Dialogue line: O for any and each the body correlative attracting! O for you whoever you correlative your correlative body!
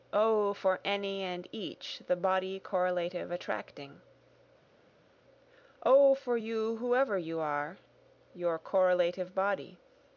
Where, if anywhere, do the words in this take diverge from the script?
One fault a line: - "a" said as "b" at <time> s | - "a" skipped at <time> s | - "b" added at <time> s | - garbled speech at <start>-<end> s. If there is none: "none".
- "correlative" said as "are" at 7.4 s